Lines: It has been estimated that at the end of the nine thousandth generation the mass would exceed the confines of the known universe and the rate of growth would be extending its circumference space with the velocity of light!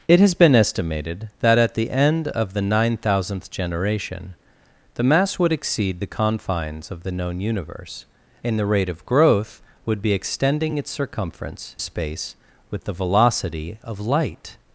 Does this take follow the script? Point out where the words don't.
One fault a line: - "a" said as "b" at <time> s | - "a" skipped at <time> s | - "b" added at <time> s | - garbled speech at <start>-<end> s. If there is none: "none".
none